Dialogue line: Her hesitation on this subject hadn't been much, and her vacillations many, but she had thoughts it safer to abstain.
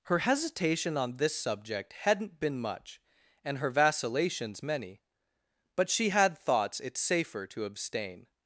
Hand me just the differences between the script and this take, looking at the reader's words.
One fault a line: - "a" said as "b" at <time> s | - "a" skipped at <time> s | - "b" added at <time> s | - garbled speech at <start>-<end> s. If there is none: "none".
none